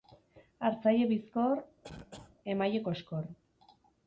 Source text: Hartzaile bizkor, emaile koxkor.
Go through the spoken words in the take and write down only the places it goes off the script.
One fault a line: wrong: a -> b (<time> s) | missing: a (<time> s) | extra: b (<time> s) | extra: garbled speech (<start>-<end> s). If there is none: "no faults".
no faults